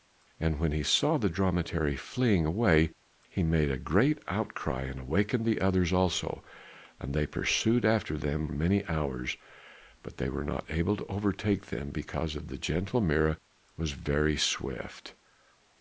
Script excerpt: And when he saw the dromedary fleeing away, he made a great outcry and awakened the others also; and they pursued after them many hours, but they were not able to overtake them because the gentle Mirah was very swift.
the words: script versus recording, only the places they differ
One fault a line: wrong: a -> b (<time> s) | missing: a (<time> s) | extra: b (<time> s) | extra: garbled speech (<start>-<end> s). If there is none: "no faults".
no faults